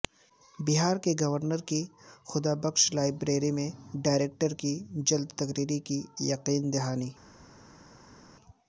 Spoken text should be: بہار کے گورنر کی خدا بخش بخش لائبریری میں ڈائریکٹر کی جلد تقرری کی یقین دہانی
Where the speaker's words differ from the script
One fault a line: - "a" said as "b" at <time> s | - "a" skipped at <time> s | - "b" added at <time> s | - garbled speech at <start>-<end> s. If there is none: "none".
- "بخش" skipped at 2.8 s